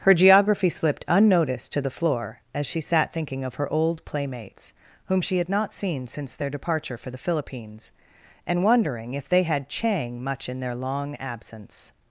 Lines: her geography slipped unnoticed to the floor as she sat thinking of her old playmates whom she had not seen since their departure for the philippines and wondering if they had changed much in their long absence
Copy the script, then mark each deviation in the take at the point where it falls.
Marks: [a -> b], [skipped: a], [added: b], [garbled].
her geography slipped unnoticed to the floor as she sat thinking of her old playmates whom she had not seen since their departure for the philippines and wondering if they had [changed -> chang] much in their long absence